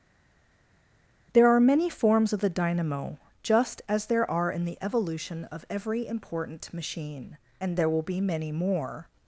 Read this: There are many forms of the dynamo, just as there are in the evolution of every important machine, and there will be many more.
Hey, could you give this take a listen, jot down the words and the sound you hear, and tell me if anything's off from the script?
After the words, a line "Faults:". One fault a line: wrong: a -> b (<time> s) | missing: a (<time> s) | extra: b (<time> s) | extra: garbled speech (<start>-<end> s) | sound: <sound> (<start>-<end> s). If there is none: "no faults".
There are many forms of the dynamo, just as there are in the evolution of every important machine, and there will be many more.
Faults:
no faults